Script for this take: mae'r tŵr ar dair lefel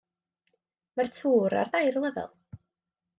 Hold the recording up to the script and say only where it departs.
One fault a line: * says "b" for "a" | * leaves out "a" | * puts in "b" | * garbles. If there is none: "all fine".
all fine